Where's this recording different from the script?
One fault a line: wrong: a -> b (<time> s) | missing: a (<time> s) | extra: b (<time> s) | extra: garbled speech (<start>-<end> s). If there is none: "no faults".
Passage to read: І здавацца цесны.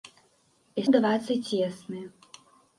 no faults